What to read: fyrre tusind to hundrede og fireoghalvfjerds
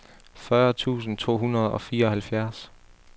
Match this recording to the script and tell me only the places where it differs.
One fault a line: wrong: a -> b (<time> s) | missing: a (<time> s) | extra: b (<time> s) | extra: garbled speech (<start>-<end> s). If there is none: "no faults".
no faults